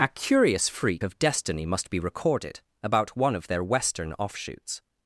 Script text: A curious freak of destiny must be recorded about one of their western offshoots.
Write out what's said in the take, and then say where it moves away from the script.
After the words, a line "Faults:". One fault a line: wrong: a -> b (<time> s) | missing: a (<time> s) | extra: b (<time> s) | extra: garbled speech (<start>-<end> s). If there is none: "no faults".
A curious freak of destiny must be recorded about one of their western offshoots.
Faults:
no faults